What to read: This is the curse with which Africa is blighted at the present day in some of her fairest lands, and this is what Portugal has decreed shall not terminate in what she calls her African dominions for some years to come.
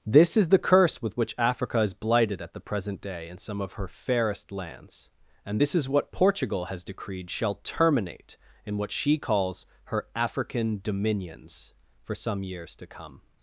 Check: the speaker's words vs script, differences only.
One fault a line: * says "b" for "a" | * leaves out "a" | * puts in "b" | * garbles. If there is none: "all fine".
* leaves out "not"